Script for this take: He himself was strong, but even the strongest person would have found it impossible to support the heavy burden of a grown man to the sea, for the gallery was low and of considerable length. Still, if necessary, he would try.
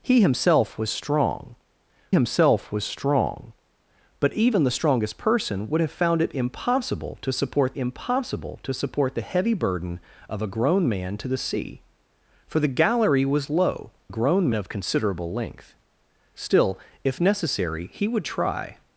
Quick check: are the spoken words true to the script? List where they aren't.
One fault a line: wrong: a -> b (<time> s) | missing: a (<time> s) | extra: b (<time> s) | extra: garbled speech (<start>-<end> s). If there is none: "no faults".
extra: himself was strong (2.1 s)
extra: impossible to support (7.8 s)
wrong: and -> grown (14.1 s)